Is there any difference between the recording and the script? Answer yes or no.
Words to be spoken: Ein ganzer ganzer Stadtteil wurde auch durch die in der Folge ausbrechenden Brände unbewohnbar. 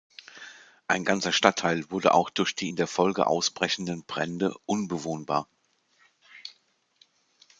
yes